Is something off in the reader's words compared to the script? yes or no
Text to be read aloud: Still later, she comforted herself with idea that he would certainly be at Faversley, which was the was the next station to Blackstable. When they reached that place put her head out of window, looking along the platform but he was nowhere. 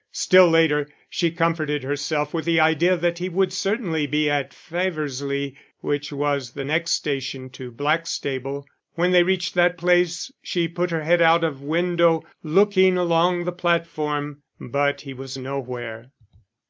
yes